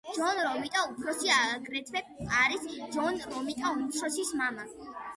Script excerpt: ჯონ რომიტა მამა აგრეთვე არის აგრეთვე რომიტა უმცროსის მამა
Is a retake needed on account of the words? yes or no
yes